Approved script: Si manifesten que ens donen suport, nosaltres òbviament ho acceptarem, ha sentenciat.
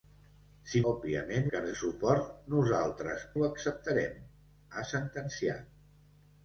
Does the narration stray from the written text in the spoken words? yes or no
yes